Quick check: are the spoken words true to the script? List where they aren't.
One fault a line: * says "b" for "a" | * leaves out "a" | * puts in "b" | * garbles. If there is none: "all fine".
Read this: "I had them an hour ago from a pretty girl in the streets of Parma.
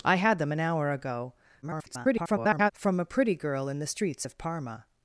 * garbles